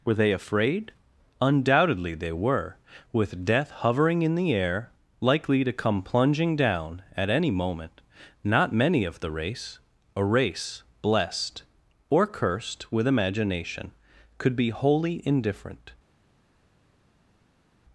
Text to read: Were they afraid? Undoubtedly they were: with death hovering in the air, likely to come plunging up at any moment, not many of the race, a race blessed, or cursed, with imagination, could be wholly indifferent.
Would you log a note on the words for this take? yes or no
yes